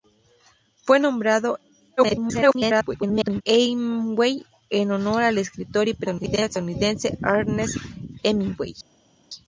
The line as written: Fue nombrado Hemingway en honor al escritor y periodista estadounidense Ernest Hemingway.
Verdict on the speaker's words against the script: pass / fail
fail